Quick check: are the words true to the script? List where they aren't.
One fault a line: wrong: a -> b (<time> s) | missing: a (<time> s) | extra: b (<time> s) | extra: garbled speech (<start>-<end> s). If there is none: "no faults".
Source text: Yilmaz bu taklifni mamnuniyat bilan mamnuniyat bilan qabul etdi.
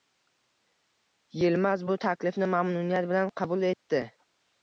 missing: mamnuniyat bilan (3.3 s)